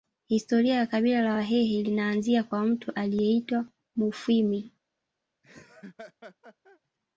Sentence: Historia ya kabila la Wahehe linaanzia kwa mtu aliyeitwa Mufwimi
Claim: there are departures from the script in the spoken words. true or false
false